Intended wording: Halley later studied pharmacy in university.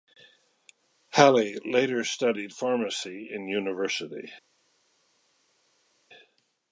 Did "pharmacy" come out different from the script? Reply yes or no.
no